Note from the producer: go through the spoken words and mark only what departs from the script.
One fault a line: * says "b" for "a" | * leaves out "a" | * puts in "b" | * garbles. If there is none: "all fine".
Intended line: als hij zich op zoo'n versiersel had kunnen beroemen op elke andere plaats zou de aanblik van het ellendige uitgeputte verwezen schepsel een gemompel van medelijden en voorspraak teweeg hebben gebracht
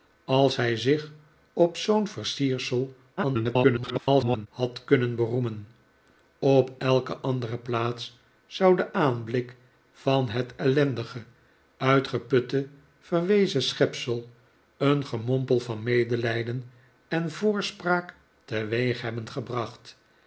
* garbles